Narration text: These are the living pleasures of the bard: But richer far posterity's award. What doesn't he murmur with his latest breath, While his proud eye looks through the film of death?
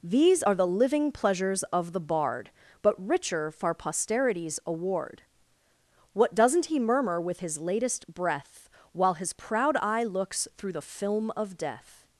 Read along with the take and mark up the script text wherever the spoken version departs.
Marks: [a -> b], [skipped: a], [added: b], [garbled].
These are the living pleasures of the bard: But richer far posterity's award. What doesn't he murmur with his latest breath, While his proud eye looks through the film of death?